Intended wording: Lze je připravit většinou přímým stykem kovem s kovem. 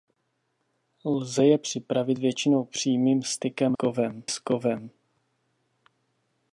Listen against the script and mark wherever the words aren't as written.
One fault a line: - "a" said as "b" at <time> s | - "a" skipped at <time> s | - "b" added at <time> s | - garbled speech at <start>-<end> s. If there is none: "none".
none